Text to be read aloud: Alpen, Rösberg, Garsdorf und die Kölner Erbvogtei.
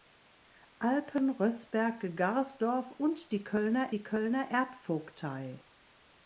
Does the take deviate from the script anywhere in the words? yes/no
yes